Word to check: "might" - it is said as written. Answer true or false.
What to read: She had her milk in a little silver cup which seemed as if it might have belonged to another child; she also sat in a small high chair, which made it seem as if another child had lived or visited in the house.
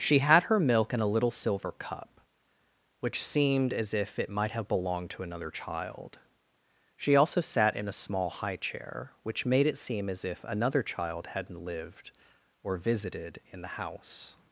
true